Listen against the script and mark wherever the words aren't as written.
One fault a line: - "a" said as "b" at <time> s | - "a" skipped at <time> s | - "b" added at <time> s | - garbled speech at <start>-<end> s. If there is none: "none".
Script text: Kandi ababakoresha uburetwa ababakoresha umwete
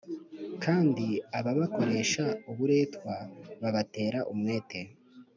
- "ababakoresha" said as "babatera" at 3.6 s